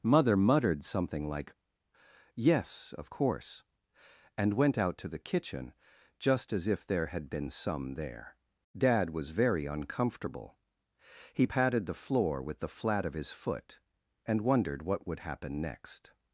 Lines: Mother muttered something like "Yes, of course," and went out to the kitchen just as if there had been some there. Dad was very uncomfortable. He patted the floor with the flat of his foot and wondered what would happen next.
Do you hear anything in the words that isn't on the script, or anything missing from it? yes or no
no